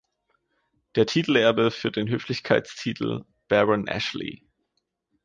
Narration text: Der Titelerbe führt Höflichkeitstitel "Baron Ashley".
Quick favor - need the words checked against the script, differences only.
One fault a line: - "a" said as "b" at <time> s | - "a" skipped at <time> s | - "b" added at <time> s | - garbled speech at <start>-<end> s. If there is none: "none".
- "den" added at 1.9 s